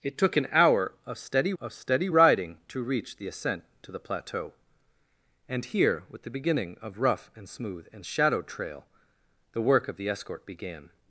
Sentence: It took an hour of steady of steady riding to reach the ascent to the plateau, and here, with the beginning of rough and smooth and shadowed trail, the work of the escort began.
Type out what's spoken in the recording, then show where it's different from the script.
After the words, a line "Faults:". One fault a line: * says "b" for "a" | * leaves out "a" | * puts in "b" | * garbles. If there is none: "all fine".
It took an hour of steady of steady riding to reach the ascent to the plateau, and here, with the beginning of rough and smooth and shadowed trail, the work of the escort began.
Faults:
all fine